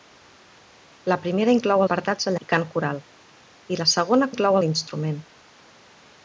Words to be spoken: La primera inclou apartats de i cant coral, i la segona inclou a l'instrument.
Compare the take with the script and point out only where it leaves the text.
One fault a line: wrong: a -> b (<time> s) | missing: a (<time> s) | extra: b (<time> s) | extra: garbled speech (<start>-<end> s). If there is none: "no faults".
no faults